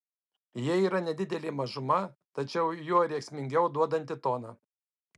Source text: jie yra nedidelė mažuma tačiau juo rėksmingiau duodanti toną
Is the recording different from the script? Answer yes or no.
no